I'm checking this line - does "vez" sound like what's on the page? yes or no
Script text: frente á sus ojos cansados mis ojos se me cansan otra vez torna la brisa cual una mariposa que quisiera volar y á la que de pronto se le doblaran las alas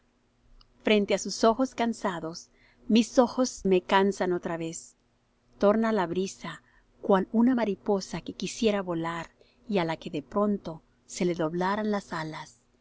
yes